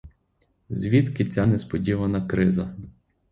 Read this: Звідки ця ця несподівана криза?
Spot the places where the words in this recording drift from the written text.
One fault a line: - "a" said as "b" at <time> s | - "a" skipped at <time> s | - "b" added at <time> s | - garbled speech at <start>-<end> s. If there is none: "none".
- "ця" skipped at 1.5 s